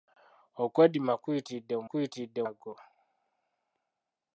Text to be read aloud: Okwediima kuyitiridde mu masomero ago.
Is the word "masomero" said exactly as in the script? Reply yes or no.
no